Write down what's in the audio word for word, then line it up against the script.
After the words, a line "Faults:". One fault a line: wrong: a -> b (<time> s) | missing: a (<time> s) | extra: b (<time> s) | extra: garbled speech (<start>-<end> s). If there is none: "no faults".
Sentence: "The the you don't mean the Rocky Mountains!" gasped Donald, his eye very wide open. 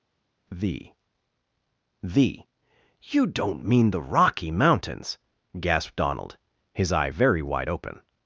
"The the you don't mean the Rocky Mountains!" gasped Donald, his eye very wide open.
Faults:
no faults